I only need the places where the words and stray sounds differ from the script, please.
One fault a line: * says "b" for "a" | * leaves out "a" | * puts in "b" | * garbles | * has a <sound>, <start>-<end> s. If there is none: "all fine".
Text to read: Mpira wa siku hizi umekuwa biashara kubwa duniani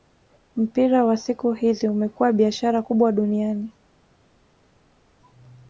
all fine